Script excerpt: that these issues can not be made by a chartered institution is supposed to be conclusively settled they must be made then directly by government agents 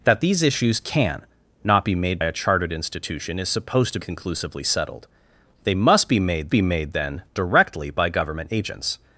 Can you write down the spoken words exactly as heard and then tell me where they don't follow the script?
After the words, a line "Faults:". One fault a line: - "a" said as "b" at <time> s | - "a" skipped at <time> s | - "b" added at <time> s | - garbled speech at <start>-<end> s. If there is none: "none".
that these issues can not be made a chartered institution is supposed to conclusively settled they must be made be made then directly by government agents
Faults:
- "by" skipped at 2.2 s
- "be" skipped at 4.0 s
- "be made" added at 6.5 s